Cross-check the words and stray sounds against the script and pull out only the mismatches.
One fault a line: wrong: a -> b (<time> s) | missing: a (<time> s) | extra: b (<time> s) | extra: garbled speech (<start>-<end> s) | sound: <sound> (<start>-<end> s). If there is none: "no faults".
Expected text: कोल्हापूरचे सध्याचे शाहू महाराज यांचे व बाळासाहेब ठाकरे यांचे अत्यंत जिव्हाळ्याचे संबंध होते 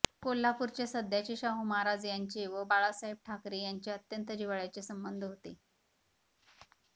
no faults